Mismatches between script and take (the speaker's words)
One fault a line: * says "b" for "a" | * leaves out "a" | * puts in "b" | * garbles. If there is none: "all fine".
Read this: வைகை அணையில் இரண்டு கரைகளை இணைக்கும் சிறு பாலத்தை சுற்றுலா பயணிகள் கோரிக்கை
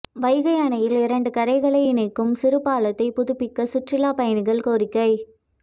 * puts in "புதுப்பிக்க"